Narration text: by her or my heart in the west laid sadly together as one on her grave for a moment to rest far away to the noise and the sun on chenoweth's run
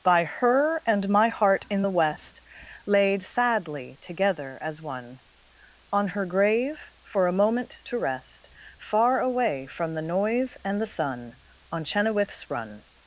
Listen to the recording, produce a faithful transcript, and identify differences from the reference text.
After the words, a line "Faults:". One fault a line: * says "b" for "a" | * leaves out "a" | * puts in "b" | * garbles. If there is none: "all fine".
by her and my heart in the west laid sadly together as one on her grave for a moment to rest far away from the noise and the sun on chenoweth's run
Faults:
* says "and" for "or"
* says "from" for "to"